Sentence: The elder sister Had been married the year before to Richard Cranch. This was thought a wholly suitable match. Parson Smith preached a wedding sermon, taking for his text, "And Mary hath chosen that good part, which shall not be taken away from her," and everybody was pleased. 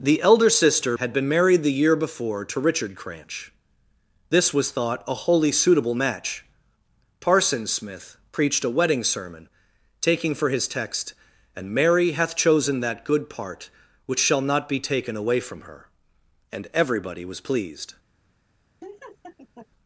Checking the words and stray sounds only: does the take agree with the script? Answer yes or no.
no